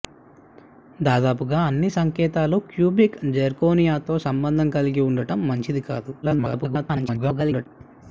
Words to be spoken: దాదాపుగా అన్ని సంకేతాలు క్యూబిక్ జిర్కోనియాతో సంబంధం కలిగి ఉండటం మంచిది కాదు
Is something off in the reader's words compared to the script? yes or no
yes